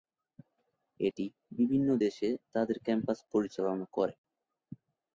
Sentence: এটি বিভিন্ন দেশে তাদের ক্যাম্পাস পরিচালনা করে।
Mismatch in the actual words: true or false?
false